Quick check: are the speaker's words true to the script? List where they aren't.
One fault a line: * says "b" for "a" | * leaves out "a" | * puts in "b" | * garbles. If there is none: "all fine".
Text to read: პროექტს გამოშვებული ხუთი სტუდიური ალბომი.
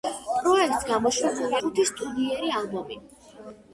all fine